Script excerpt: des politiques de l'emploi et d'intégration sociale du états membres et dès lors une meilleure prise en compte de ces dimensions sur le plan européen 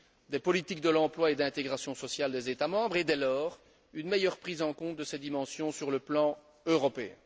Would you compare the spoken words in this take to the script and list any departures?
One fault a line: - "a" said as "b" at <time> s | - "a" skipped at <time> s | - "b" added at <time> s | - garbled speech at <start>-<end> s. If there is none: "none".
- "du" said as "des" at 2.3 s